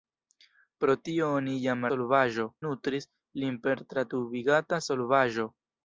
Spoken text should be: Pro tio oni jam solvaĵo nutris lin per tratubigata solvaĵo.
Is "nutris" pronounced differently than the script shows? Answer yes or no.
no